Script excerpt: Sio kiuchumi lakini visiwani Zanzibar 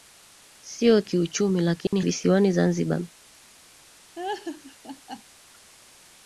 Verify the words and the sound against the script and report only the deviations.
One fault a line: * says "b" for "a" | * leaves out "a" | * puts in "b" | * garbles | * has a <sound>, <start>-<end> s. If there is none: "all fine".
* has a dropout, 1.9-1.9 s
* has a laugh, 4.2-5.2 s